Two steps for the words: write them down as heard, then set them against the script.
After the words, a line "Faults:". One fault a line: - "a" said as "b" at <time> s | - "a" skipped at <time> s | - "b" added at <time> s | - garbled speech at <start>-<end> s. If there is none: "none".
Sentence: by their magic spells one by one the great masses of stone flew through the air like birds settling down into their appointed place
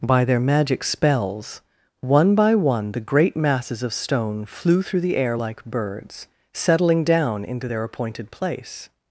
by their magic spells one by one the great masses of stone flew through the air like birds settling down into their appointed place
Faults:
none